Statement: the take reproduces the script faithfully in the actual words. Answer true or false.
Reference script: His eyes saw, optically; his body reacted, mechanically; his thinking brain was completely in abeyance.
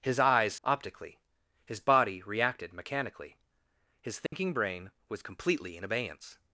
false